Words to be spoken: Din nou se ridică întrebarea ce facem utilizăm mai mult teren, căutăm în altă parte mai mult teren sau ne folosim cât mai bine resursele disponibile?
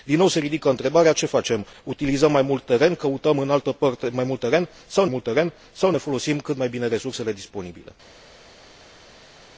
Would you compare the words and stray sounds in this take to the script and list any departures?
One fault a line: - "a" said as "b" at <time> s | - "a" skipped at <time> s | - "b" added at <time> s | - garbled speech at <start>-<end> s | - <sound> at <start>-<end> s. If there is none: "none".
- "mult teren sau" added at 5.1 s